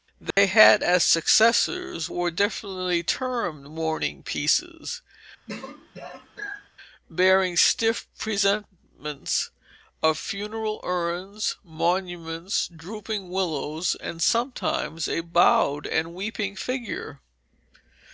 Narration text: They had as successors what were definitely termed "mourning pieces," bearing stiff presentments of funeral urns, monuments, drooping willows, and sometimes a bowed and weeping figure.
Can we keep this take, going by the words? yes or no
no